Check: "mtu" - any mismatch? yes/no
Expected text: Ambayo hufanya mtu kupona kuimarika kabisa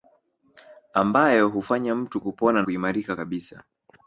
no